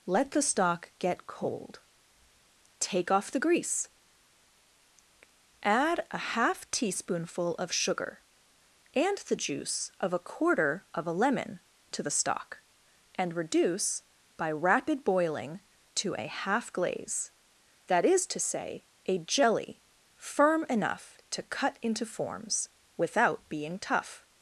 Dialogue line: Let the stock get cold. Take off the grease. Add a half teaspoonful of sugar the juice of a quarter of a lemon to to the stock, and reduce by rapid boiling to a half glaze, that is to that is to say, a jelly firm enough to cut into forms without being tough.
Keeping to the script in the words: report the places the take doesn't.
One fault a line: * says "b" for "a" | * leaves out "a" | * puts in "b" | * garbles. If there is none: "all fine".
* puts in "and"
* leaves out "to"
* leaves out "that is to"